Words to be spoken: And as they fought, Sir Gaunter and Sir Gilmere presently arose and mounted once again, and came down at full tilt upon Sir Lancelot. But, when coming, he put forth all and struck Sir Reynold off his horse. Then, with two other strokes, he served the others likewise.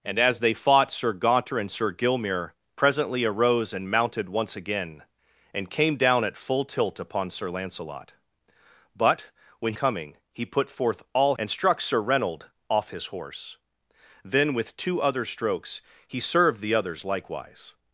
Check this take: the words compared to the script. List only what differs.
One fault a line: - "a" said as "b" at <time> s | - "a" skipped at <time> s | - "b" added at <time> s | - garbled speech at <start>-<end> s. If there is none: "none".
none